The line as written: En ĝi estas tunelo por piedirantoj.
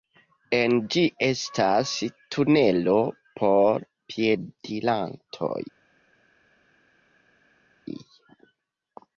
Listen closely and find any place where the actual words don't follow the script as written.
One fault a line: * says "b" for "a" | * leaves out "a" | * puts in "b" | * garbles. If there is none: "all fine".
all fine